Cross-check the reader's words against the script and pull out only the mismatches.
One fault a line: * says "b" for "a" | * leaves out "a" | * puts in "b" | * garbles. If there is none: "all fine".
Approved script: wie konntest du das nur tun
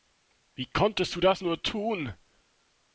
all fine